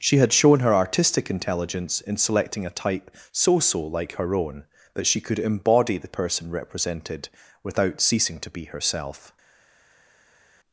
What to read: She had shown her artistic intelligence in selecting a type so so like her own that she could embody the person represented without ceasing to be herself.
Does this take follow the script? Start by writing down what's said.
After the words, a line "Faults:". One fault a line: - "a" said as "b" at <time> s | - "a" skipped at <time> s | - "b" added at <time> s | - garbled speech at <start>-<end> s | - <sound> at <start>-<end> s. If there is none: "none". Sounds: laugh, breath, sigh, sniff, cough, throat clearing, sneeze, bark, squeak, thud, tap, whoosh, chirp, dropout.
She had shown her artistic intelligence in selecting a type so so like her own that she could embody the person represented without ceasing to be herself.
Faults:
none